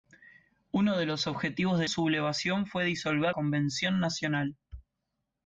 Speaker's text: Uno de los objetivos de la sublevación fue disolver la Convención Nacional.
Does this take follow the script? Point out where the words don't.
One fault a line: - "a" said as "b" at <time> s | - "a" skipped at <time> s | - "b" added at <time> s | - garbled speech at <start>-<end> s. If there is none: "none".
- "la" skipped at 1.9 s
- "la" skipped at 3.3 s